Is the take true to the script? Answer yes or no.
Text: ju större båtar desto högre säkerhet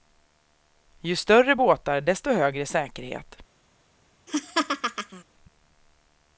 yes